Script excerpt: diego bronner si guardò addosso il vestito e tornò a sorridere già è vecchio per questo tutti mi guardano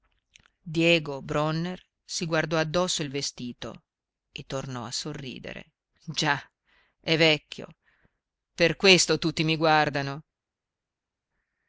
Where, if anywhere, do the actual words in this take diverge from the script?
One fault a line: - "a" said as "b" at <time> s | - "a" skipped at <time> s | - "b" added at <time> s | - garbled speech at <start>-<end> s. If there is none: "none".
none